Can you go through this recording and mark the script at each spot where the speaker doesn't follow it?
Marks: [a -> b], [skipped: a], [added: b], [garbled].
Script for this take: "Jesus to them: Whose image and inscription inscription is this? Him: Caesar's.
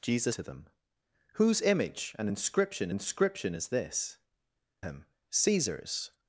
"Jesus to them: Whose image and inscription inscription is this? Him: Caesar's.